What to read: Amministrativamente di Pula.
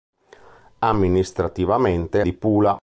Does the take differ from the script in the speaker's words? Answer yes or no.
no